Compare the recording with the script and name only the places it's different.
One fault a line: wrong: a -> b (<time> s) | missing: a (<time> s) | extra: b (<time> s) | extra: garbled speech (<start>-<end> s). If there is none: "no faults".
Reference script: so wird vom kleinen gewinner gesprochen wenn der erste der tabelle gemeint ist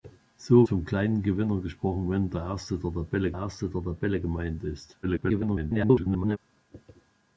missing: wird (0.7 s)
extra: erste der tabelle (3.3 s)
extra: garbled speech (5.0-6.4 s)